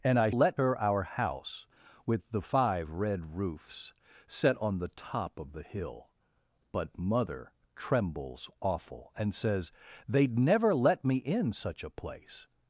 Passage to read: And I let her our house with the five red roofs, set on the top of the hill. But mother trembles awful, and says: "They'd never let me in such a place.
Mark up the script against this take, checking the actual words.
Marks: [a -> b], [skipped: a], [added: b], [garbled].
And I let her our house with the five red roofs, set on the top of the hill. But mother trembles awful, and says: "They'd never let me in such a place.